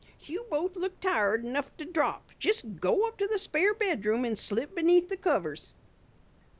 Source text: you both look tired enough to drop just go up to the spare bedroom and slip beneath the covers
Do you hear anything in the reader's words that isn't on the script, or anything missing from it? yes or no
no